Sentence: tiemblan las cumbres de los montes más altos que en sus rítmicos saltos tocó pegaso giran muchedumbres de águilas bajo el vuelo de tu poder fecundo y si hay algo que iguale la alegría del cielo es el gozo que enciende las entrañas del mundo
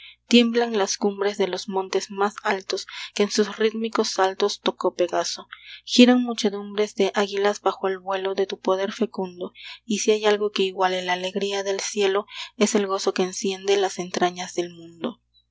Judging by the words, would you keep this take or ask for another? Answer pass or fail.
pass